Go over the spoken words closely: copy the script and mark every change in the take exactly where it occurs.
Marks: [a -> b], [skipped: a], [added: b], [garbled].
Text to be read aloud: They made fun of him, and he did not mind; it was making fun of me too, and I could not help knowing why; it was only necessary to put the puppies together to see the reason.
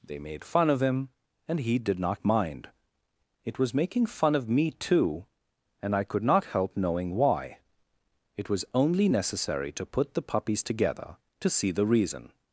They made fun of him, and he did not mind; it was making fun of me too, and I could not help knowing why; it was only necessary to put the puppies together to see the reason.